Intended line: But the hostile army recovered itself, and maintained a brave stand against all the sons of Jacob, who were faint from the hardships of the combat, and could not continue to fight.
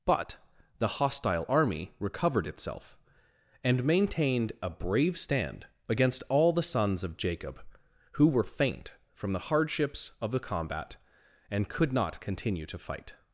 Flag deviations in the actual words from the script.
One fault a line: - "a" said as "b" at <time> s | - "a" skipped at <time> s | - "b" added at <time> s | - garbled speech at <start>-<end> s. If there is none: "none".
none